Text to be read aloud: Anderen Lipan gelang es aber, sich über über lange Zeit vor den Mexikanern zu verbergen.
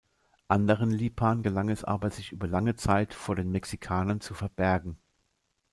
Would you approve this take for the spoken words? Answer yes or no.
no